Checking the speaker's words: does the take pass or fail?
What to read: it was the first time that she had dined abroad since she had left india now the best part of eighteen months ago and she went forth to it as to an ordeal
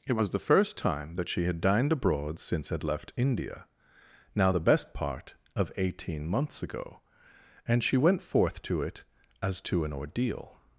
fail